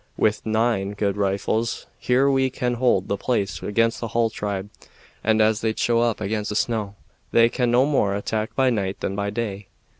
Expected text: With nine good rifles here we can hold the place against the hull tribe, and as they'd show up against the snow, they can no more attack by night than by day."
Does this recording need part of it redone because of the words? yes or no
no